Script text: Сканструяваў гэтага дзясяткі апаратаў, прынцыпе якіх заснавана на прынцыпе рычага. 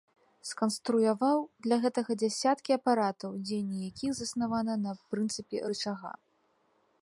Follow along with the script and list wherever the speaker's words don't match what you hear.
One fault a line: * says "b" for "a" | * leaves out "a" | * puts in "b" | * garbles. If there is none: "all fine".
* puts in "для"
* says "дзеянне" for "прынцыпе"